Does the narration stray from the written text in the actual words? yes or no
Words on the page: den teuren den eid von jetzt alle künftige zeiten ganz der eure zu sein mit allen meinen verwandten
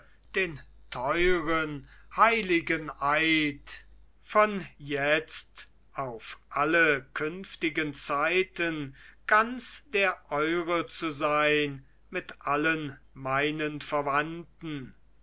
yes